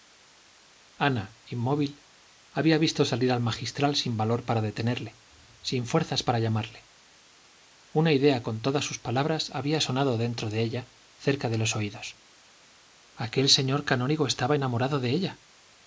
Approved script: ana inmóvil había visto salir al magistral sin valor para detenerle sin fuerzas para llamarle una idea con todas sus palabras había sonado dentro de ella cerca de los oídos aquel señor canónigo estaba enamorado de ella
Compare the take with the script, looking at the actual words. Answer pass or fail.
pass